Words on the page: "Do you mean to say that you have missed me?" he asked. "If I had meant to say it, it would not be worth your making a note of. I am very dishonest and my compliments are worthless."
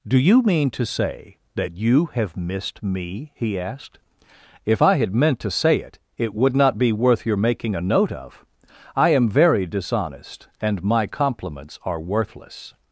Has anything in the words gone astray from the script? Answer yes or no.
no